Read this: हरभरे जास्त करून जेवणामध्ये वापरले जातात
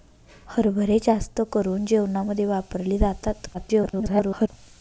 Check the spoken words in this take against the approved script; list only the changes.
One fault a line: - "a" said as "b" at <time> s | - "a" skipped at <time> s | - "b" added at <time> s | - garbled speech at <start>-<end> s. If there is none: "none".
- garbled speech at 3.5-4.5 s